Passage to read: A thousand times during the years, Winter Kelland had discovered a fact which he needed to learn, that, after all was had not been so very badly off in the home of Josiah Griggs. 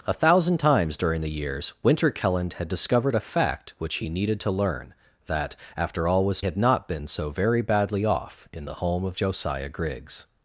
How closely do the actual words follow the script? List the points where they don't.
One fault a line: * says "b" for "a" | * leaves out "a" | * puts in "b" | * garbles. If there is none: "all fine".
all fine